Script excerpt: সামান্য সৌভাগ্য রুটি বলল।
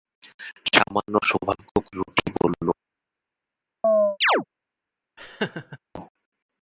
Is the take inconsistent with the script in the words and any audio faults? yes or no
yes